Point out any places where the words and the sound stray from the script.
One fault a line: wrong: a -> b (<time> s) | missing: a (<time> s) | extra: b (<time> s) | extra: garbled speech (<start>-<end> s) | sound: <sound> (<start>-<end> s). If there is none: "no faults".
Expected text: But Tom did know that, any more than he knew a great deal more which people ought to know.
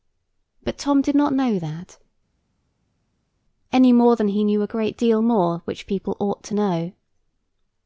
extra: not (1.1 s)